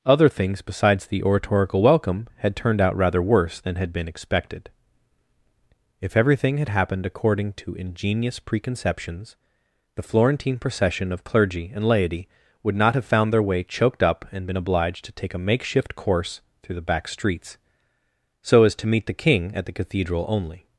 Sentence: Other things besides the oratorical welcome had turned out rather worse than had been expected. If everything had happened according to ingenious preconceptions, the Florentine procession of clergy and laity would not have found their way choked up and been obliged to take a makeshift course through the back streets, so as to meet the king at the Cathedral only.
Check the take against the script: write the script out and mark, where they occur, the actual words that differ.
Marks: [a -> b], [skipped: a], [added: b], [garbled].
Other things besides the oratorical welcome had turned out rather worse than had been expected. If everything had happened according to ingenious preconceptions, the Florentine procession of clergy and laity would not have found their way choked up and been obliged to take a makeshift course through the back streets, so as to meet the king at the Cathedral only.